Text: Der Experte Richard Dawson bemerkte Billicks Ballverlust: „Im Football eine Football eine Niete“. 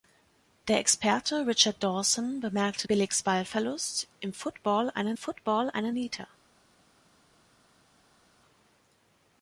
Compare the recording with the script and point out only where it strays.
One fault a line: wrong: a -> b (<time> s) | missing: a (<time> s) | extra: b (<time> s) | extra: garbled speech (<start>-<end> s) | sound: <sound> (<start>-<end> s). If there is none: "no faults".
no faults